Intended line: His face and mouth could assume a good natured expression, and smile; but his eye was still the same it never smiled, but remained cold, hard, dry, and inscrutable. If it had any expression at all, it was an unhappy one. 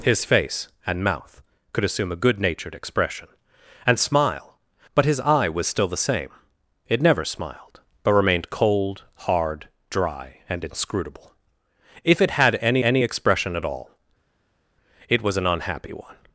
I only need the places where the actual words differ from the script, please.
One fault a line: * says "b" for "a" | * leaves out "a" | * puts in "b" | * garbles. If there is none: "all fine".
* puts in "any"